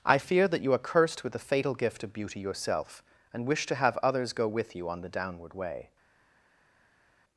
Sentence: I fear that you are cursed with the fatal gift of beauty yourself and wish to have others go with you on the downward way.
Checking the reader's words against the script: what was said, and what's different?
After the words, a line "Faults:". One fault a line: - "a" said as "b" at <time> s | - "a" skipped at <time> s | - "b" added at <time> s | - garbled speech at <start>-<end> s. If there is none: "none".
I fear that you are cursed with the fatal gift of beauty yourself and wish to have others go with you on the downward way.
Faults:
none